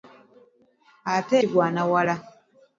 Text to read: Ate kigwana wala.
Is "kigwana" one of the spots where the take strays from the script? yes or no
no